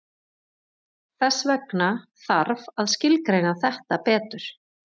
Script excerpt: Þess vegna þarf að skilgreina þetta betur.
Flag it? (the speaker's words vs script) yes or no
no